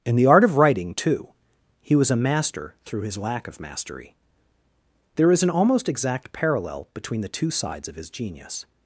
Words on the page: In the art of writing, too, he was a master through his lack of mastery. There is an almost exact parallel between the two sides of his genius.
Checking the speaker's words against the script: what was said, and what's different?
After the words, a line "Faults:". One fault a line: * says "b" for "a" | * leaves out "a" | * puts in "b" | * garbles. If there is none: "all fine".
In the art of writing, too, he was a master through his lack of mastery. There is an almost exact parallel between the two sides of his genius.
Faults:
all fine